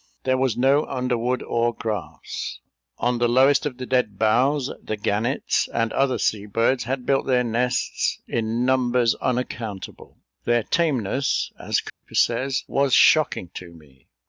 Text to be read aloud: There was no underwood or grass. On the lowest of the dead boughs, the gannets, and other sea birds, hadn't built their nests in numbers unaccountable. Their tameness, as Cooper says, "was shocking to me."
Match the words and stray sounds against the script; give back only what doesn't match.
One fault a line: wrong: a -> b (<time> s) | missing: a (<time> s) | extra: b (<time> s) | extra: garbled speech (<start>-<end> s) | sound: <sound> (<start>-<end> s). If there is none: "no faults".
wrong: hadn't -> had (6.8 s)
sound: dropout (11.9-12.0 s)